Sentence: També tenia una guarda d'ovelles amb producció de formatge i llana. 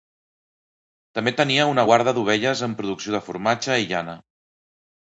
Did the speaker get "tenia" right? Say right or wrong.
right